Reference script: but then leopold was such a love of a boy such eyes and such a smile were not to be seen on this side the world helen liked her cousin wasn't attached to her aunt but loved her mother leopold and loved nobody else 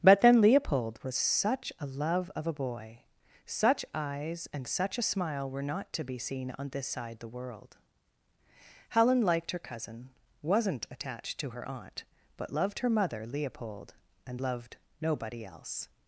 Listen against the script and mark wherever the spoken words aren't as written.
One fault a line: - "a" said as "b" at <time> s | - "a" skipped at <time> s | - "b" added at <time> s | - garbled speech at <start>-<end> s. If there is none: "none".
none